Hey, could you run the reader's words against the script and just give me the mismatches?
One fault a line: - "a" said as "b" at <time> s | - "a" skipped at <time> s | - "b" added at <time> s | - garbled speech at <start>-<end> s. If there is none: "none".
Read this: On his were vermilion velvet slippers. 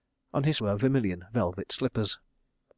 none